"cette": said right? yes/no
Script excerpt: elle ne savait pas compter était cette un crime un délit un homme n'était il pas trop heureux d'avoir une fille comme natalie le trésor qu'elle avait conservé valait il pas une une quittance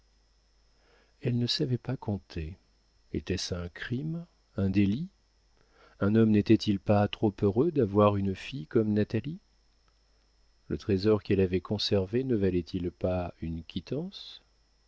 no